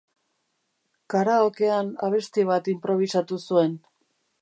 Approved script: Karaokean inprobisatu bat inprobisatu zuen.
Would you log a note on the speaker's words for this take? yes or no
yes